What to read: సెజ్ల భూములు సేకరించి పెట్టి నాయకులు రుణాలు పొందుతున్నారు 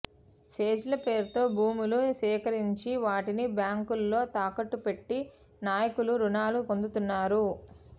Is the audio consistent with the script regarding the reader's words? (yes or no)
no